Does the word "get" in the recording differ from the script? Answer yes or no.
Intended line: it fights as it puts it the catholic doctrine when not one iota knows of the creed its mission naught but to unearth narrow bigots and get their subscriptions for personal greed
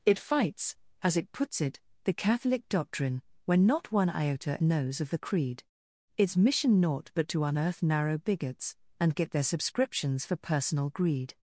no